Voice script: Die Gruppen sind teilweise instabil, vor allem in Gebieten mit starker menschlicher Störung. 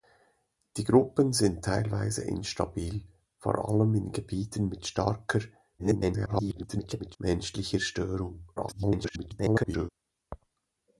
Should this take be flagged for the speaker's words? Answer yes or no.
yes